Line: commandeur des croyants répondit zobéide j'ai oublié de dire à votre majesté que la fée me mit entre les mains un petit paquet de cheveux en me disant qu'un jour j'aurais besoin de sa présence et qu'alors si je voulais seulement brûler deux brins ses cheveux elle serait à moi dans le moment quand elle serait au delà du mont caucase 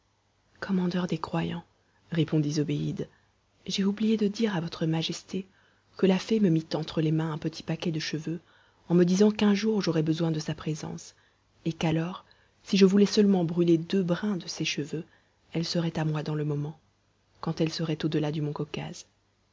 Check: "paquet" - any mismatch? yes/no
no